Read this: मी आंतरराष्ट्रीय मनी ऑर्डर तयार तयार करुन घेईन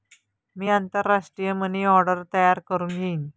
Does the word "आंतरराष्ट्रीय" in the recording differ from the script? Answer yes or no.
no